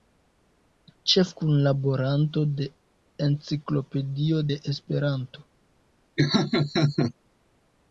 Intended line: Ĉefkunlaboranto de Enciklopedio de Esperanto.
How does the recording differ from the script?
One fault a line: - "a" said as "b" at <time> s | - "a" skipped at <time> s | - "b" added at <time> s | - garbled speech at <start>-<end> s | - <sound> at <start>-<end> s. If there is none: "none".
- laugh at 6.2-7.1 s